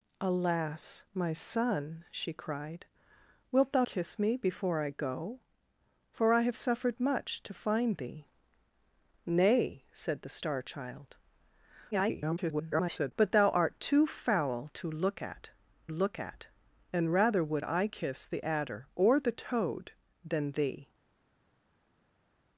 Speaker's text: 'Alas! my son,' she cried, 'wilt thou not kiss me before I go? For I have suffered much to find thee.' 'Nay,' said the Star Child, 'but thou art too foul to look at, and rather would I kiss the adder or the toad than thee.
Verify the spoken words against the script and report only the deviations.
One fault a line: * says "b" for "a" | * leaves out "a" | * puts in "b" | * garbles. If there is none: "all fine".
* leaves out "not"
* garbles
* puts in "look at"